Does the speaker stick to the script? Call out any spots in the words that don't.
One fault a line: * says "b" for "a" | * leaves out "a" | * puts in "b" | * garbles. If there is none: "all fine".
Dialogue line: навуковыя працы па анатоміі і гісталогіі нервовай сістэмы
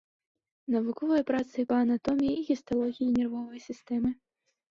all fine